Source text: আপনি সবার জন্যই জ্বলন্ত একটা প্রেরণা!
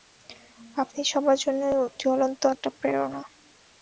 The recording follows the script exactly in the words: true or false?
true